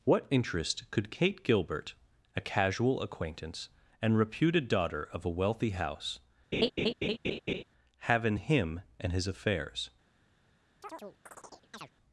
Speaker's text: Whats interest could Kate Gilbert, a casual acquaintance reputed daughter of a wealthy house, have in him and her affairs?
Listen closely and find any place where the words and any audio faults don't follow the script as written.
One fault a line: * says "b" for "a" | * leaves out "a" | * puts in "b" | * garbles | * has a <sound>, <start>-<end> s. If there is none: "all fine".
* says "What" for "Whats"
* puts in "and"
* has a laugh, 6.5-7.6 s
* says "his" for "her"
* has a chirp, 10.8-11.9 s